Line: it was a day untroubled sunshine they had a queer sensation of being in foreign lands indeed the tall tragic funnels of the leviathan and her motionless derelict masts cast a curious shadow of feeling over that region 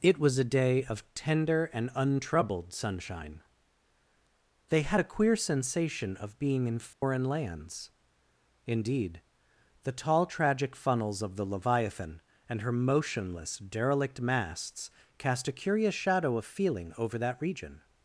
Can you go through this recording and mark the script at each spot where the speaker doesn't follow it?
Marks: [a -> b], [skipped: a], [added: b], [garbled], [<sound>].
it was a day [added: of tender and] untroubled sunshine they had a queer sensation of being in foreign [dropout] lands indeed the tall tragic funnels of the leviathan and her motionless derelict masts cast a curious shadow of feeling over that region